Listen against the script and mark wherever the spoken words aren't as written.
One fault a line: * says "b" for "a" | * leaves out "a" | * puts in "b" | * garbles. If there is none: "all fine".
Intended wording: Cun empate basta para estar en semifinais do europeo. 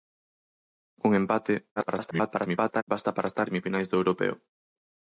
* garbles
* leaves out "en"